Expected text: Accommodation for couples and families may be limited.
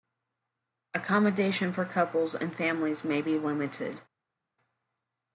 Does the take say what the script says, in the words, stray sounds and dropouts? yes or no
yes